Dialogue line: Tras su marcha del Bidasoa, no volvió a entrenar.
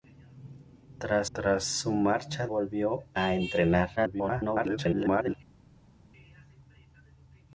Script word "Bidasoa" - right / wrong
wrong